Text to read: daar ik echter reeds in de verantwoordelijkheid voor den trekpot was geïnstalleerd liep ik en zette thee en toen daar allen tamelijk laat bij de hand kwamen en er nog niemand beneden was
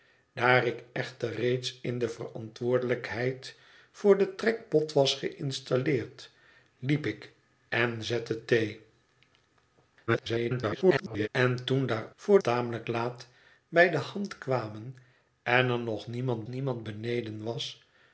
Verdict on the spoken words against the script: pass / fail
fail